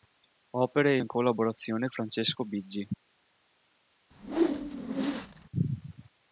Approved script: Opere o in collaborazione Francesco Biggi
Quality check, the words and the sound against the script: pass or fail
fail